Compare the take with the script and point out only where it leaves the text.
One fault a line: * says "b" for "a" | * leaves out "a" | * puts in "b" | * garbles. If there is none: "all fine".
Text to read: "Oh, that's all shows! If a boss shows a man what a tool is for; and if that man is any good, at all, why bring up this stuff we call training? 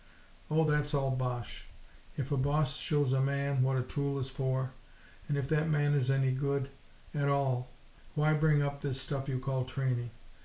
* says "bosh" for "shows"
* says "you" for "we"